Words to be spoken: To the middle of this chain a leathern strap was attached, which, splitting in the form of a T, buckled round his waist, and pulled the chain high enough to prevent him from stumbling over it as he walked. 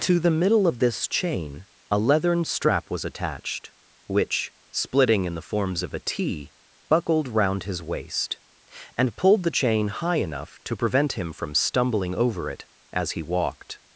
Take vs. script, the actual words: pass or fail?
fail